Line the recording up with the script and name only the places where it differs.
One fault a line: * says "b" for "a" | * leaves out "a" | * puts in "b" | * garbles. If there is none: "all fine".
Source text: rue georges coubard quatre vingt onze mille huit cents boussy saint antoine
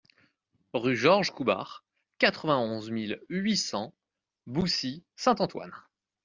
all fine